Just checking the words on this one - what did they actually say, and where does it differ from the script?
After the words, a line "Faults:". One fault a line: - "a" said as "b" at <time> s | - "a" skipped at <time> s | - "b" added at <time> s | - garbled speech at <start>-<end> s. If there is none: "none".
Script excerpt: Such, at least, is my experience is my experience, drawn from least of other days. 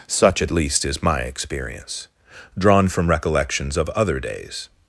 Such, at least, is my experience, drawn from recollections of other days.
Faults:
- "is my experience" skipped at 2.1 s
- "least" said as "recollections" at 3.1 s